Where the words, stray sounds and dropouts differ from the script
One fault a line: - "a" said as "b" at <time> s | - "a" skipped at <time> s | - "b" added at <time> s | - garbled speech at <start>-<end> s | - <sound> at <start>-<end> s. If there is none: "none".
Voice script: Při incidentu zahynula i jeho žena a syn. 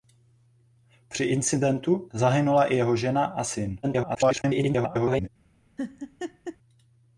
- garbled speech at 3.8-5.3 s
- laugh at 5.8-6.6 s